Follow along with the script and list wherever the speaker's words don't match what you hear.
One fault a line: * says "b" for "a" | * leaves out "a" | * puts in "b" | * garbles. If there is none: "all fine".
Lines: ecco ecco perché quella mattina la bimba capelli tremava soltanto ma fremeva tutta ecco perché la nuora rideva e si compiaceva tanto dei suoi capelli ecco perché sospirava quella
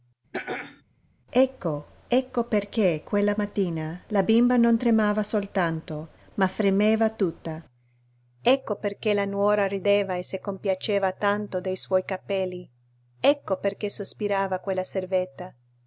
* says "non" for "capelli"